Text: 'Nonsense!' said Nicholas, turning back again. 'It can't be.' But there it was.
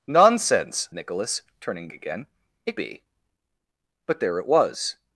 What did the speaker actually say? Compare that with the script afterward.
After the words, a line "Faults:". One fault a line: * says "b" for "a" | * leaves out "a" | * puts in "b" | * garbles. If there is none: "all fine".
'Nonsense!' Nicholas, turning again. 'It be.' But there it was.
Faults:
* leaves out "said"
* leaves out "back"
* leaves out "can't"